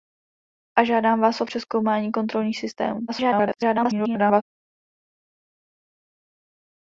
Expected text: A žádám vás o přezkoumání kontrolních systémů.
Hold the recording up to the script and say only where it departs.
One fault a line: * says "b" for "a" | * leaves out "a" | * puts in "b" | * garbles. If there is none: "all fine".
* garbles